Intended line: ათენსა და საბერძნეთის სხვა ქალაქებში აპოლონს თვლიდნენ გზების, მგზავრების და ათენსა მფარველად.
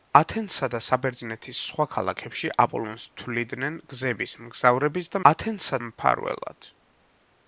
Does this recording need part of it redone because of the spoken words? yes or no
no